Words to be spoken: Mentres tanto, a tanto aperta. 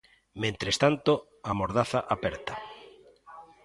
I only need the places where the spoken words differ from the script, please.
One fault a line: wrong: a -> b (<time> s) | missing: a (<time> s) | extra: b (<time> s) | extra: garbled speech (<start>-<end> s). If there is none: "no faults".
wrong: tanto -> mordaza (1.5 s)